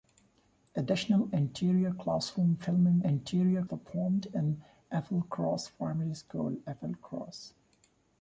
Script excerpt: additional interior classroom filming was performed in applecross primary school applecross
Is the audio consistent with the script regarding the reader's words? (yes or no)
no